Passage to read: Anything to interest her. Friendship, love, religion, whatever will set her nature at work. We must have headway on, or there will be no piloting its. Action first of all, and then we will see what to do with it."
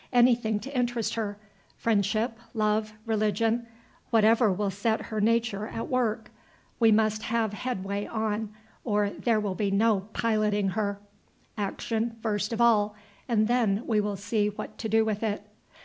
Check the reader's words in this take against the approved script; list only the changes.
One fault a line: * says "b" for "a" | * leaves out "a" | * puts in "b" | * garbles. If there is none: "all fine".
* says "her" for "its"